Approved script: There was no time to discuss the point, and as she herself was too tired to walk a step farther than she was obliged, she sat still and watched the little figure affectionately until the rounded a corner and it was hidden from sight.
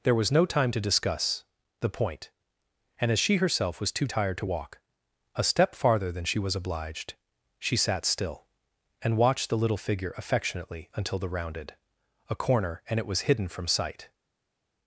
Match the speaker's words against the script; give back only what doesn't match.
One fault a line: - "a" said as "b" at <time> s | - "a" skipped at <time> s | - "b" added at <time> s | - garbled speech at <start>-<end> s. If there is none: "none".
none